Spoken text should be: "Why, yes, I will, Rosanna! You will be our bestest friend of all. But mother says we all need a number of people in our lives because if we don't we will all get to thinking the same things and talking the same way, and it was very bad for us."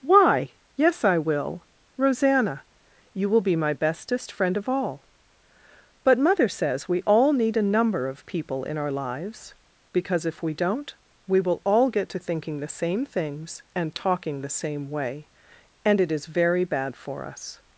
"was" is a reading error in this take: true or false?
true